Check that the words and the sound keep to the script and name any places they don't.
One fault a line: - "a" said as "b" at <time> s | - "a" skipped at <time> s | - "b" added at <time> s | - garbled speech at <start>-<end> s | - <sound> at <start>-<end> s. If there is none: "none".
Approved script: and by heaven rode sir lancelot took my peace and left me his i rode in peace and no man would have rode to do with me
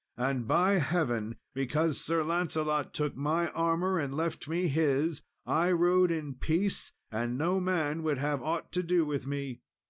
- "rode" said as "because" at 1.5 s
- "peace" said as "armour" at 3.5 s
- "rode" said as "aught" at 8.4 s